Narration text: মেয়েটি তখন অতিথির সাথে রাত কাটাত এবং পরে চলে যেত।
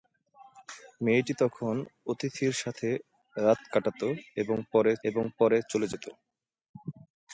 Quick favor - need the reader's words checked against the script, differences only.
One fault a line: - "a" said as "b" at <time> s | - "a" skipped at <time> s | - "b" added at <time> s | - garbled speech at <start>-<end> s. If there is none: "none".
- "এবং পরে" added at 5.0 s